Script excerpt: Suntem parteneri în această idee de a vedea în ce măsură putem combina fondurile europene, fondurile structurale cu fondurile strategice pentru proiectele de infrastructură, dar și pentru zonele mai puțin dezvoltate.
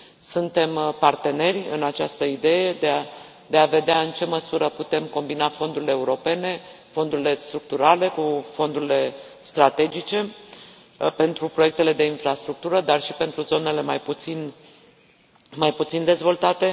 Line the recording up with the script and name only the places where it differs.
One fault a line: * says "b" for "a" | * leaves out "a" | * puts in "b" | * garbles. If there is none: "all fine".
all fine